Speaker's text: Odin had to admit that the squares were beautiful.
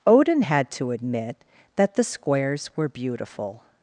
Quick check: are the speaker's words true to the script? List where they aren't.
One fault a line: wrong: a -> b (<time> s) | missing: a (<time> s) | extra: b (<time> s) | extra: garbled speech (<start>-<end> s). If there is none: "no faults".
no faults